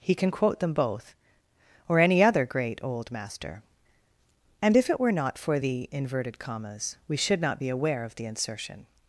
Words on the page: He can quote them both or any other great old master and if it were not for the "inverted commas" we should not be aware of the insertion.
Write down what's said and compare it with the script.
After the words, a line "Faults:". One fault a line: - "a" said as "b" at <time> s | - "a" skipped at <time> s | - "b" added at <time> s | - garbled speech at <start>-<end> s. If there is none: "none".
He can quote them both or any other great old master and if it were not for the "inverted commas" we should not be aware of the insertion.
Faults:
none